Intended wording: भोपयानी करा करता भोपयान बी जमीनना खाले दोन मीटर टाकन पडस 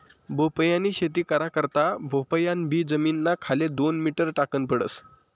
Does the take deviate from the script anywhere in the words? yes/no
yes